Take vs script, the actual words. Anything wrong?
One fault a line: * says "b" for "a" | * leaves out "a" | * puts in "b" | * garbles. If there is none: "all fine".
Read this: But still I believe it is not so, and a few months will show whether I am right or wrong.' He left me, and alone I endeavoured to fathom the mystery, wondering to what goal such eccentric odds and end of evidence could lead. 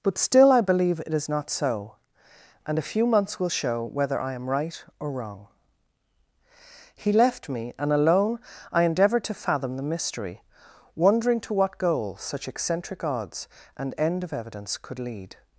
all fine